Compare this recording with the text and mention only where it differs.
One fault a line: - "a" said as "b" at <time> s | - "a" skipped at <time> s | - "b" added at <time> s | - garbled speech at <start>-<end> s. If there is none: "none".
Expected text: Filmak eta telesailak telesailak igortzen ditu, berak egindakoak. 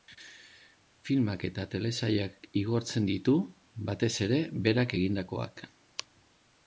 - "telesailak" skipped at 2.5 s
- "batez ere" added at 3.9 s